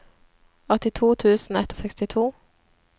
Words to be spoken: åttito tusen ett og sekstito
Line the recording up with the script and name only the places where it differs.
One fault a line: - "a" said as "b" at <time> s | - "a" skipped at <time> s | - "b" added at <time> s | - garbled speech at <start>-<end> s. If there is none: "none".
none